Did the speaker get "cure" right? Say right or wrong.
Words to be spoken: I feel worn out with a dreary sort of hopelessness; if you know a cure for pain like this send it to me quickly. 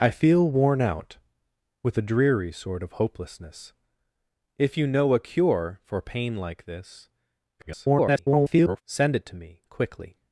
right